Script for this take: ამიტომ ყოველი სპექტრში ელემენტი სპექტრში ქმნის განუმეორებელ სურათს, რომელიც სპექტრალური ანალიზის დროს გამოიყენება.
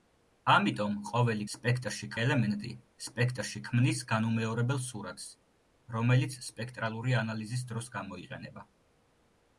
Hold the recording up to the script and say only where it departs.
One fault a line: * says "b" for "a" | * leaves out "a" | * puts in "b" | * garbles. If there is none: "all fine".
all fine